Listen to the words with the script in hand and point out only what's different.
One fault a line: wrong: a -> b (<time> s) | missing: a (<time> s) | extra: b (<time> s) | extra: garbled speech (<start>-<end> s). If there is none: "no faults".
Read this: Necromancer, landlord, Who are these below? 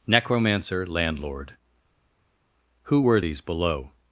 wrong: are -> were (3.0 s)